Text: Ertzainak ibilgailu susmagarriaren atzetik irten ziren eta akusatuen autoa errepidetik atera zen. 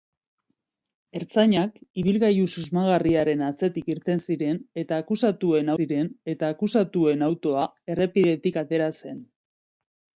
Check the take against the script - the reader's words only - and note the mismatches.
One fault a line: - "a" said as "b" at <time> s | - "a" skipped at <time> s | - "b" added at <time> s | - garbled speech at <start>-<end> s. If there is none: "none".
- "ziren eta akusatuen" added at 5.8 s